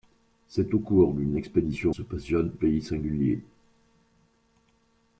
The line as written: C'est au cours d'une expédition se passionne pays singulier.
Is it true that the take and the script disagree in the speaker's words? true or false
false